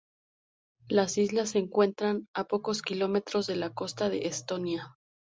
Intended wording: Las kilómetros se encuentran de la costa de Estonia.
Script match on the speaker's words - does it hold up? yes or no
no